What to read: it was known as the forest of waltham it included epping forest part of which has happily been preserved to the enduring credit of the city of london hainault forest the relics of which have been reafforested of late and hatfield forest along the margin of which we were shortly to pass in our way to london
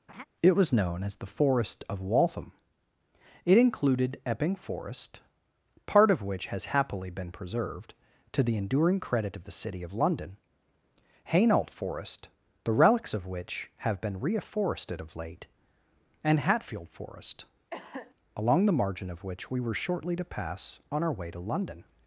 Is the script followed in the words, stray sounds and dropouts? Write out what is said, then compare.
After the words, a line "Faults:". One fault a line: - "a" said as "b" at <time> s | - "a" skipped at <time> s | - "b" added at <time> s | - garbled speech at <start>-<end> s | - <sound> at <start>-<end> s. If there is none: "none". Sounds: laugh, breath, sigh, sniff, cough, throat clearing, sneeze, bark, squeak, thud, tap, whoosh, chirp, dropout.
it was known as the forest of waltham it included epping forest part of which has happily been preserved to the enduring credit of the city of london hainault forest the relics of which have been reafforested of late and hatfield forest along the margin of which we were shortly to pass on our way to london
Faults:
- laugh at 0.1-0.3 s
- cough at 17.7-18.1 s
- "in" said as "on" at 20.9 s